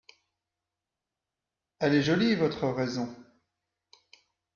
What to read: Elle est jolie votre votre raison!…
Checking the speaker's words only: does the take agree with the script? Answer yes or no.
no